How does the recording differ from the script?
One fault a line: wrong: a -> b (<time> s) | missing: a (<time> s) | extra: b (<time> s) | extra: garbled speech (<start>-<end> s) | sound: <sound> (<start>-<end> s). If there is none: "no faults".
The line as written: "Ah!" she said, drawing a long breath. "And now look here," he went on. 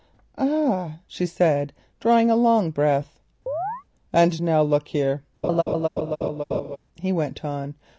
sound: chirp (3.5-3.8 s)
sound: laugh (5.4-6.8 s)